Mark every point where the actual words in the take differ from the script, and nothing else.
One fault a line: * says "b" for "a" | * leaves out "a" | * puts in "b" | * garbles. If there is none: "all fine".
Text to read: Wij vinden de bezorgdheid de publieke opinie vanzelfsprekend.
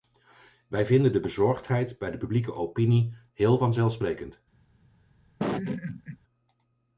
* puts in "bij"
* puts in "heel"